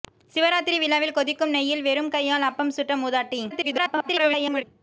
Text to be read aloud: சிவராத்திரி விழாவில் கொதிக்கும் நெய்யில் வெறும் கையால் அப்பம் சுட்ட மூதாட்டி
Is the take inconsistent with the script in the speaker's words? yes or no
yes